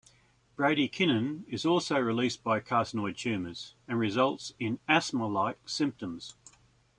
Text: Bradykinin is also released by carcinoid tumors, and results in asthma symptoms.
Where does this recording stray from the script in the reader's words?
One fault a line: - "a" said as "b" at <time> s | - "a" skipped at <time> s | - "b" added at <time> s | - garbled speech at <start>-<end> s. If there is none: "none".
- "like" added at 5.3 s